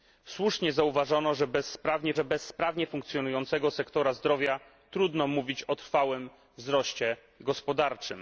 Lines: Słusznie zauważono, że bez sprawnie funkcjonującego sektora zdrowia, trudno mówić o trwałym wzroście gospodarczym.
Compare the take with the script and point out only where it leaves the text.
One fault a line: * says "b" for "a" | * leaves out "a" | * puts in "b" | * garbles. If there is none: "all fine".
* puts in "że bez sprawnie"